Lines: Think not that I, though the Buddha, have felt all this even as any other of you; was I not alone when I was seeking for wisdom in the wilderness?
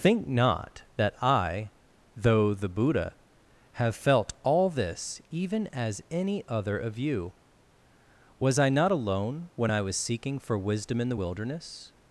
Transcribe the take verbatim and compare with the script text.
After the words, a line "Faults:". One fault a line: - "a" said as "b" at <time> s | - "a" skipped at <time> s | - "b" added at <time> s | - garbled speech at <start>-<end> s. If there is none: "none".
Think not that I, though the Buddha, have felt all this even as any other of you; was I not alone when I was seeking for wisdom in the wilderness?
Faults:
none